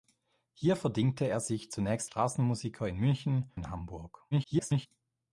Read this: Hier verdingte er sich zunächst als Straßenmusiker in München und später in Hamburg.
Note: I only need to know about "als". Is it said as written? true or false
false